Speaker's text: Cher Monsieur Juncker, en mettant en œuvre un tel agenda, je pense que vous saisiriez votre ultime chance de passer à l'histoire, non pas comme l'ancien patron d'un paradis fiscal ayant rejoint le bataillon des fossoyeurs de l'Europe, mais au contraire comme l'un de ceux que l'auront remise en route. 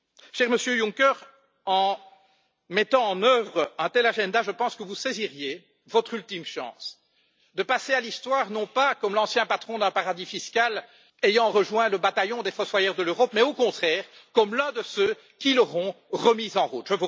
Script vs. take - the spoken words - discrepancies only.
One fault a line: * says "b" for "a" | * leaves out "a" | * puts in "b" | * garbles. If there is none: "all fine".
* says "qui" for "que"